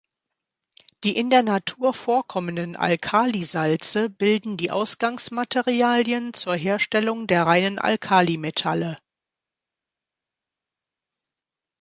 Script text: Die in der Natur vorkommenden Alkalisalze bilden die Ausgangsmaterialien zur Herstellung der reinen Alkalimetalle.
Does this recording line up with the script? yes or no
yes